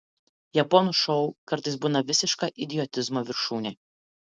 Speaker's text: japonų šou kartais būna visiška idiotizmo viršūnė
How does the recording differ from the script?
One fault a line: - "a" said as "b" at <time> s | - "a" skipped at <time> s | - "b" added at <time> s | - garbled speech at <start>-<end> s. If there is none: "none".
none